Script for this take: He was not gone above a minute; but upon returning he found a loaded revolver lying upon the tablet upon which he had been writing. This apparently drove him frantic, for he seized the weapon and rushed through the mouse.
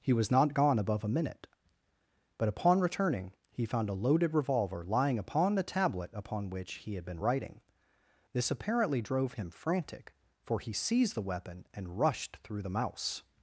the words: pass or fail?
pass